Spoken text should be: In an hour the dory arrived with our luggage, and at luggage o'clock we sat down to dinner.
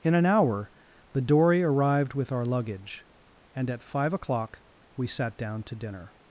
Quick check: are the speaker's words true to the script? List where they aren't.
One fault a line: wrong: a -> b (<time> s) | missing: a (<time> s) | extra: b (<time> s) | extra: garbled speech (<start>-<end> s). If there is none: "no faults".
wrong: luggage -> five (3.8 s)